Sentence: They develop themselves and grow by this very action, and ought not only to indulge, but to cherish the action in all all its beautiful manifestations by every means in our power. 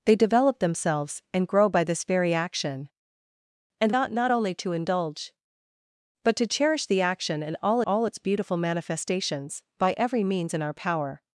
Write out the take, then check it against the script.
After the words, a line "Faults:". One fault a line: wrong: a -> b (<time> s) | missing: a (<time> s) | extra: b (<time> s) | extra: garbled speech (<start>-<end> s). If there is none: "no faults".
They develop themselves and grow by this very action, and ought not only to indulge, but to cherish the action in all all its beautiful manifestations by every means in our power.
Faults:
no faults